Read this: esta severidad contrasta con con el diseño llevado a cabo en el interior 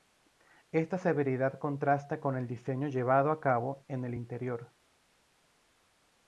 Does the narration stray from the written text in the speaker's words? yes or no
yes